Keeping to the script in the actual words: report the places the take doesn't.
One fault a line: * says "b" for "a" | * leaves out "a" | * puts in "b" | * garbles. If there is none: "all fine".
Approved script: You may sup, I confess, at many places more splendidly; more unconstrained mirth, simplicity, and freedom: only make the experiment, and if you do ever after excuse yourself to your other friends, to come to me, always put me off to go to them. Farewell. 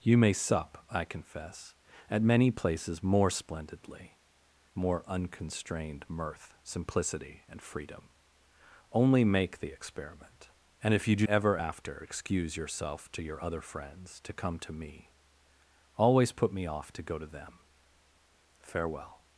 all fine